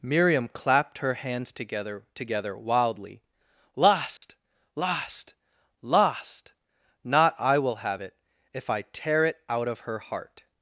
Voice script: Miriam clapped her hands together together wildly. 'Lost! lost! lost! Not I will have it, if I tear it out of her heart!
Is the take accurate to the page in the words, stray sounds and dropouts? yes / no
no